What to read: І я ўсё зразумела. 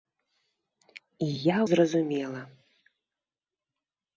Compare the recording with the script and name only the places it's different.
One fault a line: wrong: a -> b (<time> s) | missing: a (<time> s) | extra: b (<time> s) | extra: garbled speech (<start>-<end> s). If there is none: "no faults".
missing: ўсё (1.6 s)